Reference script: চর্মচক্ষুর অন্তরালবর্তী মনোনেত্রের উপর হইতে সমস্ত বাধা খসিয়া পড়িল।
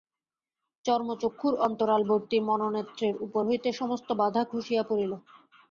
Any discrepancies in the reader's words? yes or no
no